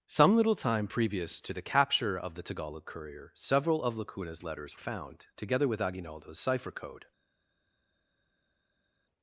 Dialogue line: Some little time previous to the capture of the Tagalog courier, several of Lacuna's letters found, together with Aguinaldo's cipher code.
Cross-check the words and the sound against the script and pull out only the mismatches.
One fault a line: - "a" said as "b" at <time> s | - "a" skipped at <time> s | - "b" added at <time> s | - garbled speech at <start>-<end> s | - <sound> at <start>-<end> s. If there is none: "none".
none